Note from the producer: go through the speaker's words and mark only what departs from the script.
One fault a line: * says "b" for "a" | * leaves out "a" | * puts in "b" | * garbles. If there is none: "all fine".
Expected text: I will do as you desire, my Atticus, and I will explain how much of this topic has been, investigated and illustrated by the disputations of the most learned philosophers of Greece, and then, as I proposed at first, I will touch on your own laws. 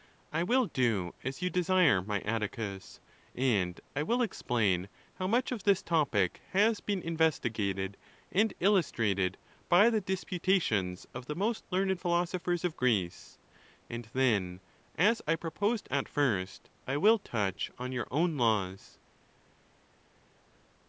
all fine